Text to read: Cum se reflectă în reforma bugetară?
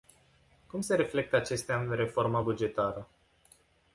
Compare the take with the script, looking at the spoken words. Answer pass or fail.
fail